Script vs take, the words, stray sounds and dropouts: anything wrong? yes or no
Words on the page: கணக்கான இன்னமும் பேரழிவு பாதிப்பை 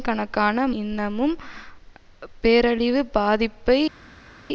no